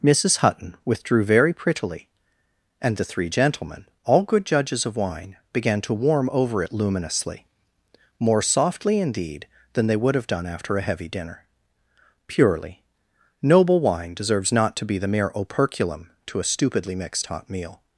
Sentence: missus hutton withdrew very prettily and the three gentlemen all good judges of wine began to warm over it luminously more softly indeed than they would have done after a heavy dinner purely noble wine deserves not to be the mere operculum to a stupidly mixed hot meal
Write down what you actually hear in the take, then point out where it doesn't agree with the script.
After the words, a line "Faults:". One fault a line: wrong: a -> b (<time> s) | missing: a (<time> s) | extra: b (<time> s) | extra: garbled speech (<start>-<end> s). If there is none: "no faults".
missus hutton withdrew very prettily and the three gentlemen all good judges of wine began to warm over it luminously more softly indeed than they would have done after a heavy dinner purely noble wine deserves not to be the mere operculum to a stupidly mixed hot meal
Faults:
no faults